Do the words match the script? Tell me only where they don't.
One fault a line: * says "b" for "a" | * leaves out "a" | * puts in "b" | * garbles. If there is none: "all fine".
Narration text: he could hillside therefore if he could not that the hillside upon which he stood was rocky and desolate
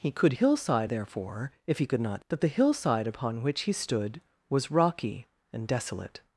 all fine